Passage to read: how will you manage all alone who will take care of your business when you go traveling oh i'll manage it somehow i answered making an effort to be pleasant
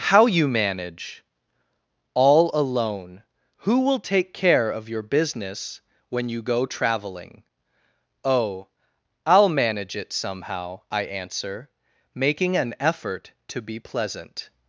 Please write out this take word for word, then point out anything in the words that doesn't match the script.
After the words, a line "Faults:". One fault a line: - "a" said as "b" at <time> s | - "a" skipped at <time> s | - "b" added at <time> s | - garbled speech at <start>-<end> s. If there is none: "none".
how you manage all alone who will take care of your business when you go traveling oh i'll manage it somehow i answer making an effort to be pleasant
Faults:
- "will" skipped at 0.3 s
- "answered" said as "answer" at 11.0 s